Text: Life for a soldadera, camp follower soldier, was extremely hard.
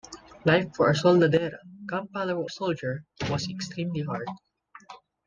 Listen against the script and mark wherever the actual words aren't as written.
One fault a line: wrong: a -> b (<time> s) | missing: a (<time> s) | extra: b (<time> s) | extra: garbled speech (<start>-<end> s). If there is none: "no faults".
no faults